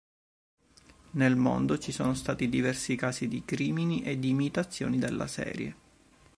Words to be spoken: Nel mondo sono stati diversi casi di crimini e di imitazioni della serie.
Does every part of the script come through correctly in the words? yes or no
no